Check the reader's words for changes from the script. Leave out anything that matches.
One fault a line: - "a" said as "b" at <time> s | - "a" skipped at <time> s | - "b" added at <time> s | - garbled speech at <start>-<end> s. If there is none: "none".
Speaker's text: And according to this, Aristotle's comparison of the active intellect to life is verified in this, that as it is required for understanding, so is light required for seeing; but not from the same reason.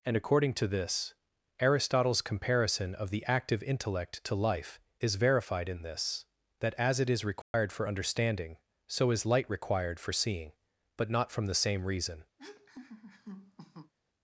none